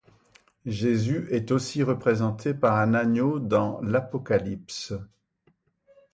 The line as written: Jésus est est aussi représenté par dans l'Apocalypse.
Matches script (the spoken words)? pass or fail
fail